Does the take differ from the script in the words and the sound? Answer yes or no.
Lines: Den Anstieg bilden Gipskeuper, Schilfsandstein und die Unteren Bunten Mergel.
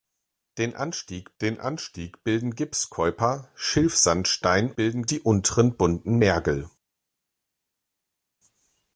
yes